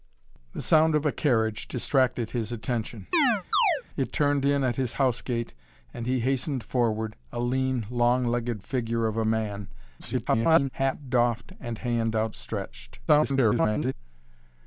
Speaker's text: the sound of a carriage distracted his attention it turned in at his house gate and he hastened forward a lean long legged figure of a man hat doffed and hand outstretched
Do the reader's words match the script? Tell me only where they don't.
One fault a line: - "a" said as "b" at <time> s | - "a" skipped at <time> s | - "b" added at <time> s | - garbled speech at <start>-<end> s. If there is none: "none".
- garbled speech at 10.0-10.7 s
- garbled speech at 13.1-13.9 s